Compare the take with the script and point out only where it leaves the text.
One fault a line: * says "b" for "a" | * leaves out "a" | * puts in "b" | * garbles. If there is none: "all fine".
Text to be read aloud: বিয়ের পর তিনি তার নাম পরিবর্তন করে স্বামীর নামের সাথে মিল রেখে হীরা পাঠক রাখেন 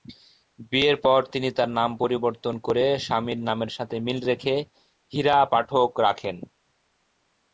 all fine